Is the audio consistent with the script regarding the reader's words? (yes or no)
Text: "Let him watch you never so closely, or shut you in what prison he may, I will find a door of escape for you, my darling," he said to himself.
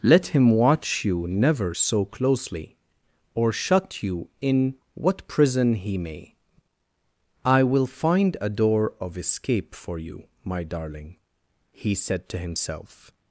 yes